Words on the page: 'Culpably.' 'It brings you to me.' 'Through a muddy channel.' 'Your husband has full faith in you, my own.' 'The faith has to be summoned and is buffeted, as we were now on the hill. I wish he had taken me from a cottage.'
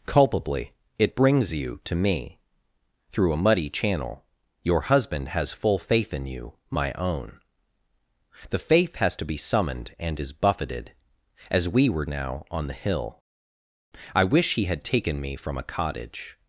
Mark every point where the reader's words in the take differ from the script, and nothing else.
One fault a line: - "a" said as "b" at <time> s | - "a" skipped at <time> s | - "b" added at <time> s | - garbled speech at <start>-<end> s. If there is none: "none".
none